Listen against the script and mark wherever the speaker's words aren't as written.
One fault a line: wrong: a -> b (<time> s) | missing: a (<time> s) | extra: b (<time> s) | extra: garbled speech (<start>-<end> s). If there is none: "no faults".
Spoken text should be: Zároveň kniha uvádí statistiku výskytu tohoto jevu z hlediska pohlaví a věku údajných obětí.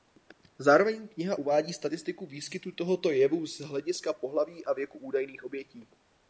no faults